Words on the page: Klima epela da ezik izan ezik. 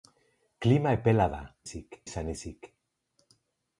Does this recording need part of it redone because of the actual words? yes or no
no